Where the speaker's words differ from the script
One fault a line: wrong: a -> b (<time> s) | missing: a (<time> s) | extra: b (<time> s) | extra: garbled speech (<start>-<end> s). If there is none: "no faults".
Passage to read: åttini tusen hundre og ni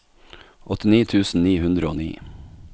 extra: ni (1.4 s)